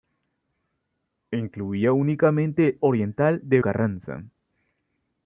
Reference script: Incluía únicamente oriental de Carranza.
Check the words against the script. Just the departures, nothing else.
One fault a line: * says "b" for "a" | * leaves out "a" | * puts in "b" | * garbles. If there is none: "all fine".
all fine